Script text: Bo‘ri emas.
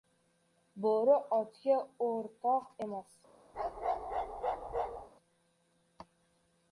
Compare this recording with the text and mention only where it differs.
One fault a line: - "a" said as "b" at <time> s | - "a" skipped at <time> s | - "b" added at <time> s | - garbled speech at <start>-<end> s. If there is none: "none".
- "otga o‘rtoq" added at 1.4 s